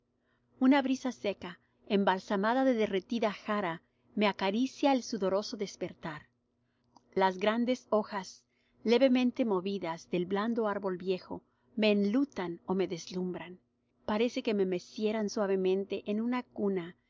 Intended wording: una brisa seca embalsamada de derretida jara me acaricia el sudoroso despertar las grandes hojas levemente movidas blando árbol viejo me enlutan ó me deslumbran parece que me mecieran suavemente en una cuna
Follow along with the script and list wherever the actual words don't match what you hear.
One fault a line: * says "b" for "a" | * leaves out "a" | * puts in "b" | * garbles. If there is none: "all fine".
* puts in "del"